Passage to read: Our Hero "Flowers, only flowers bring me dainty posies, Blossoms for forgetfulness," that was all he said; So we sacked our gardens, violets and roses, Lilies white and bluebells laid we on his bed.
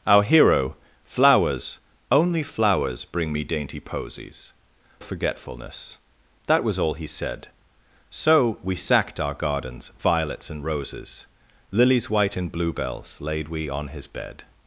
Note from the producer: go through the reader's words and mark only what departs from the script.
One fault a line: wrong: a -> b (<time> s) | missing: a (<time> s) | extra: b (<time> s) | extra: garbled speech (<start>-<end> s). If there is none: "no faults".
missing: Blossoms for (4.5 s)